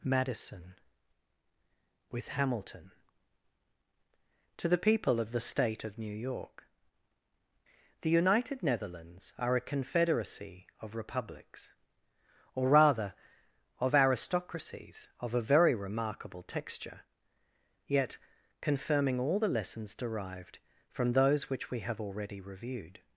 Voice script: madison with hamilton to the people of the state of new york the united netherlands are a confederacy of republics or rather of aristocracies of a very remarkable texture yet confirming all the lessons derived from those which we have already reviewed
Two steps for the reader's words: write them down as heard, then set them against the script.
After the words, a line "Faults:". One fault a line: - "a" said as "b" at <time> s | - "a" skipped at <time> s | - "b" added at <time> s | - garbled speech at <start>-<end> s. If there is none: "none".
madison with hamilton to the people of the state of new york the united netherlands are a confederacy of republics or rather of aristocracies of a very remarkable texture yet confirming all the lessons derived from those which we have already reviewed
Faults:
none